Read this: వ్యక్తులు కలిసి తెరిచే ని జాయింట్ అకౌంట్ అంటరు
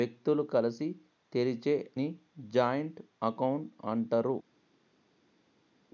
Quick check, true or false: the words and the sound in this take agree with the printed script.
true